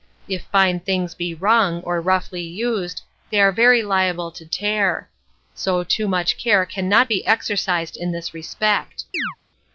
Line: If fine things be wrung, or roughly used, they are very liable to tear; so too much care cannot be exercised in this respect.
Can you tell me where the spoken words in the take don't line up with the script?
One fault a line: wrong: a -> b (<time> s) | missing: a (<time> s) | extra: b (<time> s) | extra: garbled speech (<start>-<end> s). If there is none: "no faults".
no faults